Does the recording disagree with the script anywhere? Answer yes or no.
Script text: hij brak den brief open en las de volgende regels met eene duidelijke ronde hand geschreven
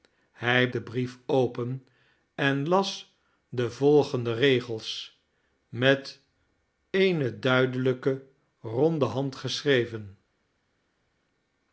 yes